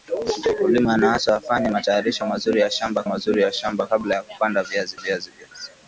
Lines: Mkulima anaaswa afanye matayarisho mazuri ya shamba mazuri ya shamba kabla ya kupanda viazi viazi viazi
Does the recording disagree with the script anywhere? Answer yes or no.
no